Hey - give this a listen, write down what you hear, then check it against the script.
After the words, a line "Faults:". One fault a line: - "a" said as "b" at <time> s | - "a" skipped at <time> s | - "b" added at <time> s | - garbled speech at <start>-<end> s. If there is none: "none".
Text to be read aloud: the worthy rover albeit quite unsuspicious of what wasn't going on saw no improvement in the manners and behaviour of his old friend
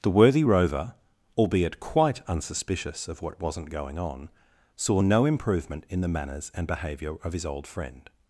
the worthy rover albeit quite unsuspicious of what wasn't going on saw no improvement in the manners and behaviour of his old friend
Faults:
none